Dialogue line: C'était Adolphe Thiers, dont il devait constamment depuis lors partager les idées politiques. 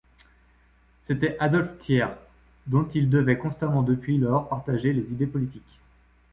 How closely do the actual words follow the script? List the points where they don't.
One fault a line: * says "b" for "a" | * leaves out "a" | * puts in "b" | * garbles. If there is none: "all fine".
all fine